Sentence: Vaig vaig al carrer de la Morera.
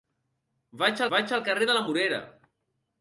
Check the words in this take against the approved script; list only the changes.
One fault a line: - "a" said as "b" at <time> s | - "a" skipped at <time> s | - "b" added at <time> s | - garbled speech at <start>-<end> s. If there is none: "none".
none